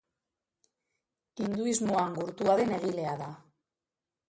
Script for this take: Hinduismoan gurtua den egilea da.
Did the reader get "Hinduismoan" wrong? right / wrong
right